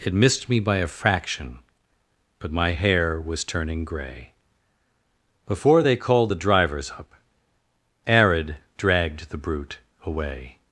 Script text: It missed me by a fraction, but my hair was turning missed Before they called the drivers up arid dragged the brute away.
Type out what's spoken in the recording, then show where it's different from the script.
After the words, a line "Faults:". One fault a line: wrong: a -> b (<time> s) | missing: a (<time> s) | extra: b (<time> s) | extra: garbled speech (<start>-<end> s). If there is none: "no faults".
It missed me by a fraction, but my hair was turning grey Before they called the drivers up arid dragged the brute away.
Faults:
wrong: missed -> grey (3.9 s)